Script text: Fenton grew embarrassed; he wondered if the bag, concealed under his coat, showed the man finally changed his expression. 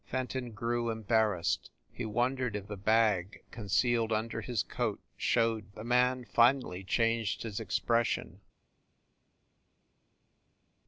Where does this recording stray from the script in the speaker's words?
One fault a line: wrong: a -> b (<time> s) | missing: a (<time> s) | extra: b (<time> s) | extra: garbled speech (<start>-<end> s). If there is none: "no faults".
no faults